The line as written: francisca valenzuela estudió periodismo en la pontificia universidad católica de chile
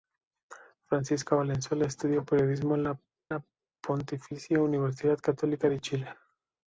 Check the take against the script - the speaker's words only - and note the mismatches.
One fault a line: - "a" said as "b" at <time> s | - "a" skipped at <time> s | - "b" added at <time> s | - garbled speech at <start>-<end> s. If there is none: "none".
- "la" added at 3.3 s